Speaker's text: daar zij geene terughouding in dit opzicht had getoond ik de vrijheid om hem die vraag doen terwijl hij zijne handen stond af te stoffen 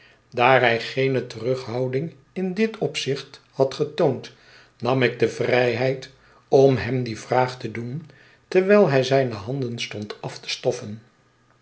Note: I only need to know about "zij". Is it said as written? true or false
false